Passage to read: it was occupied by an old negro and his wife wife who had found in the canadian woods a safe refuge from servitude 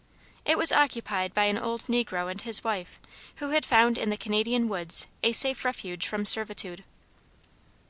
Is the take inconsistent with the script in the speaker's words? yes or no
yes